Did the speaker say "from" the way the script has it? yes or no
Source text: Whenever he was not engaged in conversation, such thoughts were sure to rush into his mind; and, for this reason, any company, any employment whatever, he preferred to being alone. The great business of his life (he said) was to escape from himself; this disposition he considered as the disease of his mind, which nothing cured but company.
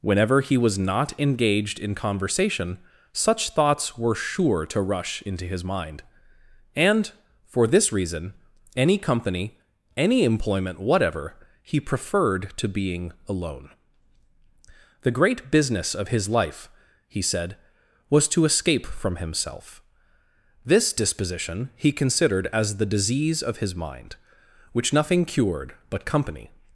yes